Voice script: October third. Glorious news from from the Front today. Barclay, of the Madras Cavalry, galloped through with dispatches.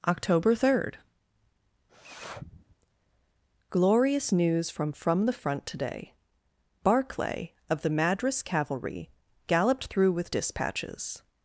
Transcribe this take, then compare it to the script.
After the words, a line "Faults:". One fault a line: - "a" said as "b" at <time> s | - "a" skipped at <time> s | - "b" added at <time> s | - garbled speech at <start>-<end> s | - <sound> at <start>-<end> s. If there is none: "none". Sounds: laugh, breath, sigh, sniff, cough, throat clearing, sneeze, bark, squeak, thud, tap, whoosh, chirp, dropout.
October third. Glorious news from from the Front today. Barclay, of the Madras Cavalry, galloped through with dispatches.
Faults:
- sniff at 1.9-2.8 s